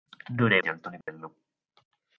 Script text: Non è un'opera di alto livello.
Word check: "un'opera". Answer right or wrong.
wrong